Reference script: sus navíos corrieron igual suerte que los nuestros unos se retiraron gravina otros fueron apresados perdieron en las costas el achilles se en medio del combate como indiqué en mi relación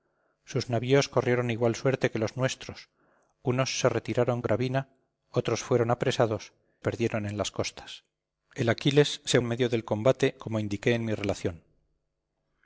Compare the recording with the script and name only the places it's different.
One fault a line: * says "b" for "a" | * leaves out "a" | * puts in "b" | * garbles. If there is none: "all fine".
all fine